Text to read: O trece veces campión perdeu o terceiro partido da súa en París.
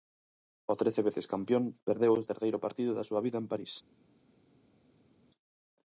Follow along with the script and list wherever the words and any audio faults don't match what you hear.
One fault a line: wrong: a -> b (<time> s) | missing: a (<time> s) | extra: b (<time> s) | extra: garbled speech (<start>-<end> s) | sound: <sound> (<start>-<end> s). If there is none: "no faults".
extra: vida (3.2 s)